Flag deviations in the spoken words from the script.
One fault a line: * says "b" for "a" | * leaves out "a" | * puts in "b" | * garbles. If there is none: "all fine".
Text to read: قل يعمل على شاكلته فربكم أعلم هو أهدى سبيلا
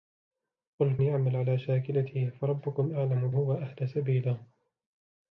all fine